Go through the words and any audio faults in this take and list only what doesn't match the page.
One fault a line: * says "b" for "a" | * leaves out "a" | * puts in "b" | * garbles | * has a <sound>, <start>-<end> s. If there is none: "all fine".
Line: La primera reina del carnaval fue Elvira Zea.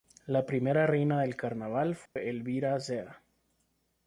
* has a dropout, 2.1-2.2 s